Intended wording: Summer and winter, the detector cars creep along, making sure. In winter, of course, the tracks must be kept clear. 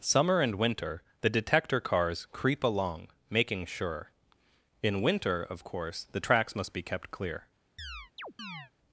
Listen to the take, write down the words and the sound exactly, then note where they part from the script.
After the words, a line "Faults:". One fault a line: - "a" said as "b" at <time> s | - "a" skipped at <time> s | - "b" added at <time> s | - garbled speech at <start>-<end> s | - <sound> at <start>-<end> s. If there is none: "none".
Summer and winter, the detector cars creep along, making sure. In winter, of course, the tracks must be kept clear.
Faults:
- chirp at 7.8-8.7 s